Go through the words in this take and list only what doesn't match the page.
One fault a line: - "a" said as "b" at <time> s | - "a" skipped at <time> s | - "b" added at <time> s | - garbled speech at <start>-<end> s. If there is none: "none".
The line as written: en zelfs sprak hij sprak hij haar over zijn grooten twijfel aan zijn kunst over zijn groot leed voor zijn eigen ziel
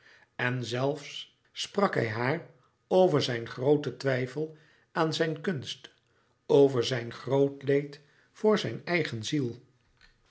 - "sprak hij" skipped at 2.1 s